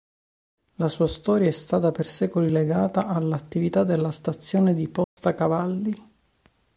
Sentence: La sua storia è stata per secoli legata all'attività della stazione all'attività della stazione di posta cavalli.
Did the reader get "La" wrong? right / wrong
right